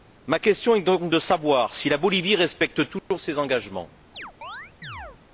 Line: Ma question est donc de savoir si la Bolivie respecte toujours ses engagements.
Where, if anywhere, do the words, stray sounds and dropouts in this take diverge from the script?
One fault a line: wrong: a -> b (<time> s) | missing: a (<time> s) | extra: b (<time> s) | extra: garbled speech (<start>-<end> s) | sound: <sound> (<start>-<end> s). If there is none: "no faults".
sound: dropout (3.0-3.1 s)
sound: chirp (4.1-5.2 s)